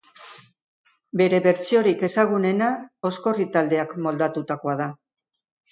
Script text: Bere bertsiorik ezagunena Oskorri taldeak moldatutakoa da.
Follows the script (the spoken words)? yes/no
yes